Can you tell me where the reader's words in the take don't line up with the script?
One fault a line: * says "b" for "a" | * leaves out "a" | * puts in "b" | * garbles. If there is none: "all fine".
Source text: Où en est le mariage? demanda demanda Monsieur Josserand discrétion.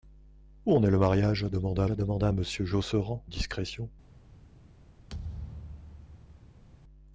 all fine